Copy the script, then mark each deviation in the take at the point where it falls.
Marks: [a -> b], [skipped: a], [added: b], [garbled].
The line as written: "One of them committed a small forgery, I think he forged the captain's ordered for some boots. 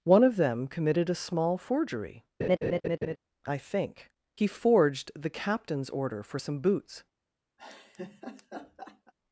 "One of them committed a small forgery, I think he forged the captain's [ordered -> order] for some boots.